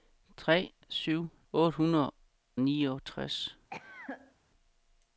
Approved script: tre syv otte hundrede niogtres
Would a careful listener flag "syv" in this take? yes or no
no